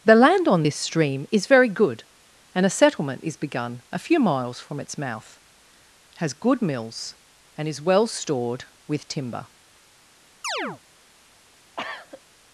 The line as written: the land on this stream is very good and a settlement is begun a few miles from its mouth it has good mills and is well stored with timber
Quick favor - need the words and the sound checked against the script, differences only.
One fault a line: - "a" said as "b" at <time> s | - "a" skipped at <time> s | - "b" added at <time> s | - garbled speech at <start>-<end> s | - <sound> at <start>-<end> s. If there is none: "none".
- "it" skipped at 5.4 s
- chirp at 10.4-10.8 s
- cough at 11.8-12.2 s